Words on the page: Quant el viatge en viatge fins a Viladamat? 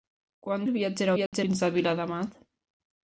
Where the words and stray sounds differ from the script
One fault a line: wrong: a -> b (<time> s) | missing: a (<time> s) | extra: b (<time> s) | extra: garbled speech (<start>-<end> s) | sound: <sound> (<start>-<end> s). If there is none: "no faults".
sound: dropout (1.3-1.3 s)